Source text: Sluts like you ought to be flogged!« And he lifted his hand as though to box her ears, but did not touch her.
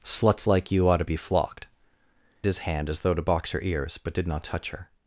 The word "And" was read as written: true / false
false